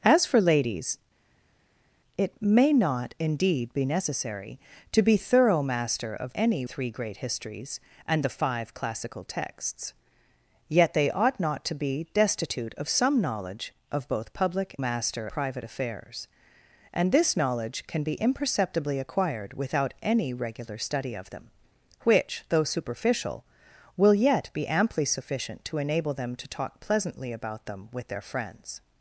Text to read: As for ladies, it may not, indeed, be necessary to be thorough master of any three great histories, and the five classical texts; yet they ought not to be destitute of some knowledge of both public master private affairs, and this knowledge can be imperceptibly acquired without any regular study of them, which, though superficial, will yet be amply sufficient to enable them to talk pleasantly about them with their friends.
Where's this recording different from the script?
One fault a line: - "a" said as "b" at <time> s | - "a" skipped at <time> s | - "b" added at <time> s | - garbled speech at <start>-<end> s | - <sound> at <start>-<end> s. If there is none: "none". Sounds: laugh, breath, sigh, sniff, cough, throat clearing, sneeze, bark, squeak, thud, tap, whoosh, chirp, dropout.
none